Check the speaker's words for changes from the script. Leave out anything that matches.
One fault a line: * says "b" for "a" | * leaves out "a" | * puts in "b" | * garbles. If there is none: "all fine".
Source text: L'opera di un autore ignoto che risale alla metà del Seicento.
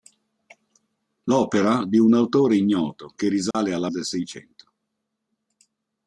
* leaves out "metà"